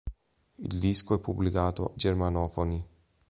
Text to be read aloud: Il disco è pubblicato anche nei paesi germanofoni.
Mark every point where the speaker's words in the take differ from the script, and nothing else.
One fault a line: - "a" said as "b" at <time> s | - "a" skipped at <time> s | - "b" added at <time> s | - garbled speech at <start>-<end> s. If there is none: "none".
- "anche nei paesi" skipped at 1.9 s